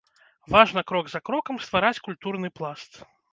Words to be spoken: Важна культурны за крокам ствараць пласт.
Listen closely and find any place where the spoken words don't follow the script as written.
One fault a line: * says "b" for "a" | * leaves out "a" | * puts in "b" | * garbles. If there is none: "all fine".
* says "крок" for "культурны"
* puts in "культурны"